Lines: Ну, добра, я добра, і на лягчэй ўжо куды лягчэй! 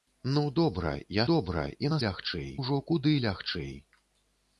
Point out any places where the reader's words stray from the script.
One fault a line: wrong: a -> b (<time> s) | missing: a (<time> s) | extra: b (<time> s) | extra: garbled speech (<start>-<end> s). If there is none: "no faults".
no faults